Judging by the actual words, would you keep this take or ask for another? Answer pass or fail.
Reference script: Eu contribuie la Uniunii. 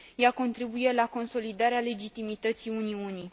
fail